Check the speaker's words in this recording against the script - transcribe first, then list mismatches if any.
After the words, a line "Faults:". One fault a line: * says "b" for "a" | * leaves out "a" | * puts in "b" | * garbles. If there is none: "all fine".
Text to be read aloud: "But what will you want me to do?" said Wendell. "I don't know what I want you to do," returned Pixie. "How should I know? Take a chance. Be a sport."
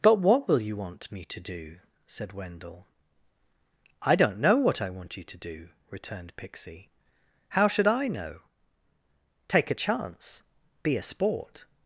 "But what will you want me to do?" said Wendell. "I don't know what I want you to do," returned Pixie. "How should I know? Take a chance. Be a sport."
Faults:
all fine